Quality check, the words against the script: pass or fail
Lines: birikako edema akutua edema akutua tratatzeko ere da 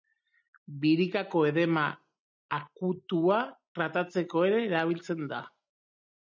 fail